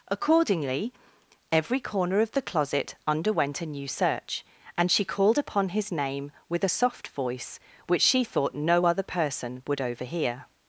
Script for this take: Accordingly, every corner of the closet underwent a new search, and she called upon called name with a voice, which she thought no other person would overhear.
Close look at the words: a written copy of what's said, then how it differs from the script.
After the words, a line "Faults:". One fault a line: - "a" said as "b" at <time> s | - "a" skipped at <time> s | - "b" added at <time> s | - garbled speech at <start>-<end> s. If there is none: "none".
Accordingly, every corner of the closet underwent a new search, and she called upon his name with a soft voice, which she thought no other person would overhear.
Faults:
- "called" said as "his" at 5.7 s
- "soft" added at 6.7 s